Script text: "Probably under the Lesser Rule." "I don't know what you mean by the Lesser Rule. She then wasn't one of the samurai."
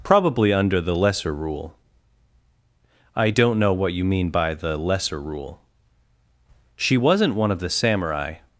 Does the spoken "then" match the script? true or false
false